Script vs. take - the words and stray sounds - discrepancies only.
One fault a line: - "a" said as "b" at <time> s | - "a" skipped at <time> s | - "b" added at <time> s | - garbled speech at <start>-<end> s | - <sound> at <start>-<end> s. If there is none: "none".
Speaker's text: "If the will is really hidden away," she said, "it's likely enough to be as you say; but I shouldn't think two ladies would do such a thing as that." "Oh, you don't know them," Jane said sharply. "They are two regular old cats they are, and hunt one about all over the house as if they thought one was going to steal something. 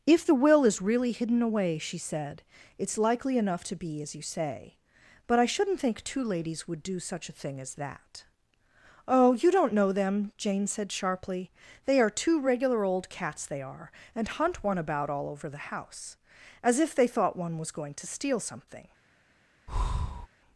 - breath at 19.7-20.3 s